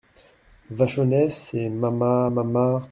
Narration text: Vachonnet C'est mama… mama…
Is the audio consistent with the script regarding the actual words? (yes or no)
yes